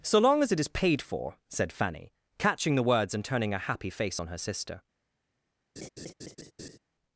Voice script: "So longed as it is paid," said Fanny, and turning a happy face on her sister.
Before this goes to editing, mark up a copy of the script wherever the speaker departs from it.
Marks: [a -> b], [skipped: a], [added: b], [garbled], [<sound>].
"So [longed -> long] as it is paid," [added: for] said Fanny, [added: catching the words] and turning a happy face on her sister. [laugh]